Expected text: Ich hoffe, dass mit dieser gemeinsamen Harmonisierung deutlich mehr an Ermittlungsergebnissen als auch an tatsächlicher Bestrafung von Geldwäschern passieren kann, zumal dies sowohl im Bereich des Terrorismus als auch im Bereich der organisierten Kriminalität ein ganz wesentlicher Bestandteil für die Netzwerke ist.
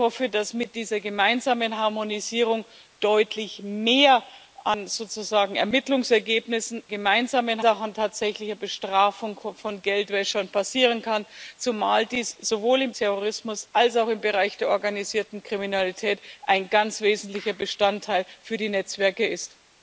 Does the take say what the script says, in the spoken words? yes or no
no